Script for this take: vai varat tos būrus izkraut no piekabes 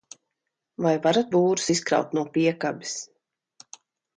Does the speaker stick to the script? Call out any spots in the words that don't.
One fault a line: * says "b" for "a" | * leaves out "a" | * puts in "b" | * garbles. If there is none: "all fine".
* leaves out "tos"